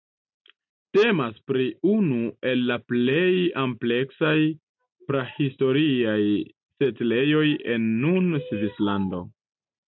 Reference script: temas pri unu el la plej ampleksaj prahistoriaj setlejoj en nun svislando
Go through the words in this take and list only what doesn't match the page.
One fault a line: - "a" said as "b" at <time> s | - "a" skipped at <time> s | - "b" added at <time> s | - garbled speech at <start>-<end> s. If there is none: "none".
none